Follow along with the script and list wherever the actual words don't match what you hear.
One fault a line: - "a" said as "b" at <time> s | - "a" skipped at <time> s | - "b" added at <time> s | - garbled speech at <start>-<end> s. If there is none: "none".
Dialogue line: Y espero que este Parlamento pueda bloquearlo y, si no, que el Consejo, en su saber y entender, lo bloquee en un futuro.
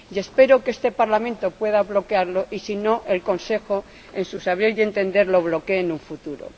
none